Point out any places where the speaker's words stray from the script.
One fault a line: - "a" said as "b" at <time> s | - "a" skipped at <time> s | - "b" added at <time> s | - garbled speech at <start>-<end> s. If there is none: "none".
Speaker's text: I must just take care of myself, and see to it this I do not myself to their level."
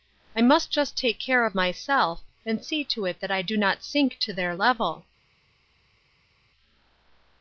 - "this" said as "that" at 3.2 s
- "myself" said as "sink" at 3.8 s